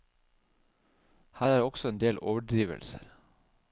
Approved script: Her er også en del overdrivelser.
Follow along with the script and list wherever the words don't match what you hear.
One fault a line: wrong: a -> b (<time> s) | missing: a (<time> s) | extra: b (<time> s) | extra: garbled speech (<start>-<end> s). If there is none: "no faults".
no faults